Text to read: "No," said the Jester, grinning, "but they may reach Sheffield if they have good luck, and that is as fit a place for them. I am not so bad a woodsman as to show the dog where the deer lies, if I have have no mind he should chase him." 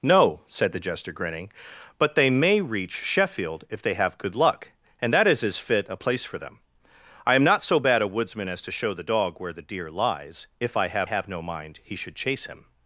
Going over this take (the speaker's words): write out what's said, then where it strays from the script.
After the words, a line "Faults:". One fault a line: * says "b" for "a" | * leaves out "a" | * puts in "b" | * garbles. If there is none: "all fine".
"No," said the Jester, grinning, "but they may reach Sheffield if they have good luck, and that is as fit a place for them. I am not so bad a woodsman as to show the dog where the deer lies, if I have have no mind he should chase him."
Faults:
all fine